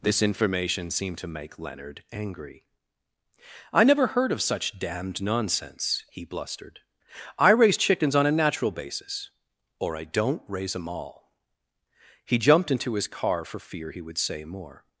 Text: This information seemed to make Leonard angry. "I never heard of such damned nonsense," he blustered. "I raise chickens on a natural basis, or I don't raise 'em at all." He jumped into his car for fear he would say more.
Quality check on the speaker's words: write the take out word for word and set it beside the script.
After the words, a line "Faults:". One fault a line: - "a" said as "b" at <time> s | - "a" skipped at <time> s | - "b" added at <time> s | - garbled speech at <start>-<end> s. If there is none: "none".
This information seemed to make Leonard angry. "I never heard of such damned nonsense," he blustered. "I raise chickens on a natural basis, or I don't raise 'em all." He jumped into his car for fear he would say more.
Faults:
- "at" skipped at 10.9 s